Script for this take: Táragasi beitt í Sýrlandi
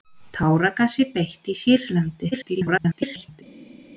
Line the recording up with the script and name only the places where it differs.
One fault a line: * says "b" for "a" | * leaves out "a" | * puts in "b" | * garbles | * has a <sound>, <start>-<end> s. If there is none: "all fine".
* garbles